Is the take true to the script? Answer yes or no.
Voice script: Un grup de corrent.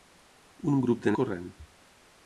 yes